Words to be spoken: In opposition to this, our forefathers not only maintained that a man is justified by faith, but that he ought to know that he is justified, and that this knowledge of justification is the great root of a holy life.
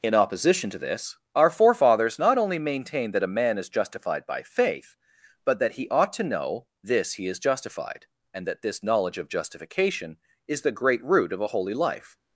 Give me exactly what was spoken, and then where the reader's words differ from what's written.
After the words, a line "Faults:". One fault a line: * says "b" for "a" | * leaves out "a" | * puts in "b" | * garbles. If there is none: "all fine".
In opposition to this, our forefathers not only maintained that a man is justified by faith, but that he ought to know this he is justified, and that this knowledge of justification is the great root of a holy life.
Faults:
* says "this" for "that"